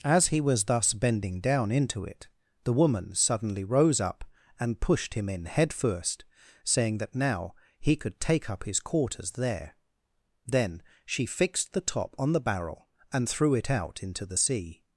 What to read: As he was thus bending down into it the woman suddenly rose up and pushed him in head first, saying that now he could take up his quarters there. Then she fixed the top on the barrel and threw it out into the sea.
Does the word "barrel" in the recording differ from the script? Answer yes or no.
no